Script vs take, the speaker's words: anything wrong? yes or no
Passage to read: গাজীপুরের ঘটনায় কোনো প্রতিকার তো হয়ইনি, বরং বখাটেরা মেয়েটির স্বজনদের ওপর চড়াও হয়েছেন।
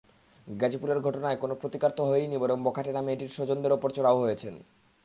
no